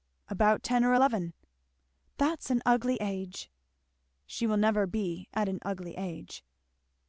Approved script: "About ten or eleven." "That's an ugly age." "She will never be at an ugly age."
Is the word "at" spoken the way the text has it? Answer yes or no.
yes